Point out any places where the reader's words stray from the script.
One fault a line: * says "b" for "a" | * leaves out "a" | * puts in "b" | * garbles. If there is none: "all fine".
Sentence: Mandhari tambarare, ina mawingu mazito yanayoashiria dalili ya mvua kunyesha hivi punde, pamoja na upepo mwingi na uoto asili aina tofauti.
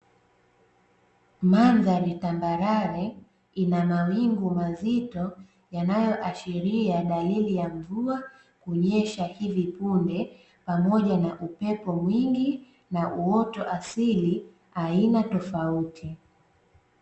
all fine